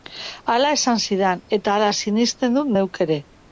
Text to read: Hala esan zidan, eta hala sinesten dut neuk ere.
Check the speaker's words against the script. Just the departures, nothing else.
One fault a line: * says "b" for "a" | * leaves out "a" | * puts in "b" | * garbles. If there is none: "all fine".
all fine